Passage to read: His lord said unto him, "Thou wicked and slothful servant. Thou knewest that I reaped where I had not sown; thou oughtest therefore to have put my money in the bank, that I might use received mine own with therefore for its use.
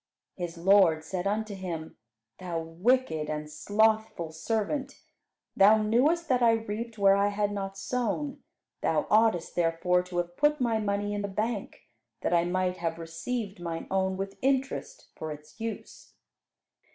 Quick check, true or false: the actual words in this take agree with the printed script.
false